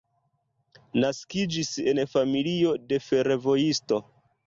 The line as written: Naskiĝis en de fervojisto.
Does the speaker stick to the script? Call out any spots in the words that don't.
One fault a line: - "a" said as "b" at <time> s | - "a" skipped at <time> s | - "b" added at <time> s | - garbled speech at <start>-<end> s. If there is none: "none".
- "familio" added at 2.2 s